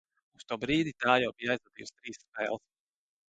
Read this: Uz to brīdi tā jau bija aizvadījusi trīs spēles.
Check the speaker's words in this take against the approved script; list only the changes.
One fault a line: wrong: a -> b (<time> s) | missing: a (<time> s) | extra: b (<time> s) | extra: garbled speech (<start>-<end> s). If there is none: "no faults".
no faults